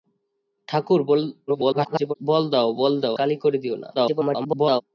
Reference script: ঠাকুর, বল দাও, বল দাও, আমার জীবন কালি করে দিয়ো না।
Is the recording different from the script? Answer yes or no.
yes